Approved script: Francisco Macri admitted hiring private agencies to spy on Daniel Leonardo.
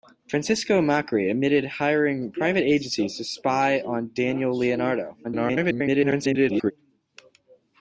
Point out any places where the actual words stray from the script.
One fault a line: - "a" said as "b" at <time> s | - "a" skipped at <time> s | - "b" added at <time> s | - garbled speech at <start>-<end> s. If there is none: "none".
- garbled speech at 5.2-6.7 s